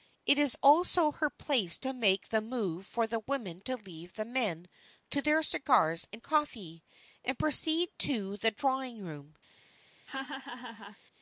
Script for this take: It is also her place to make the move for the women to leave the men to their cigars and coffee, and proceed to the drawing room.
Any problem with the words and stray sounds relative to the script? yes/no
yes